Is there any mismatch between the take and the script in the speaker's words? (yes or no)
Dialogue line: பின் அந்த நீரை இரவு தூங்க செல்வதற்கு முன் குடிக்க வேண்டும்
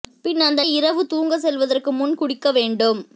yes